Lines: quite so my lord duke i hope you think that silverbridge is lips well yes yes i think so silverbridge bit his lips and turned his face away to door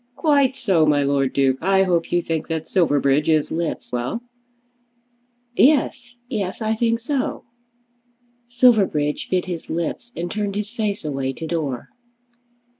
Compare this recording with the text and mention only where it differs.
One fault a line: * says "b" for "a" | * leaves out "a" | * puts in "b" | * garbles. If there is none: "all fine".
all fine